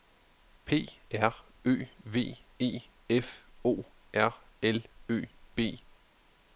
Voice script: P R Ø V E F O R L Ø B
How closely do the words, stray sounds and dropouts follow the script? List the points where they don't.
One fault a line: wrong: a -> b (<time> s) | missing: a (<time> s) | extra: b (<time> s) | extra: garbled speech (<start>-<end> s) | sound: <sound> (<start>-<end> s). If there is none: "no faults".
no faults